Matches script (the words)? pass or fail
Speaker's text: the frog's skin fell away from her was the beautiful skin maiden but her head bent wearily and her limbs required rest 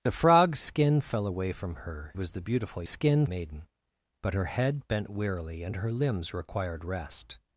pass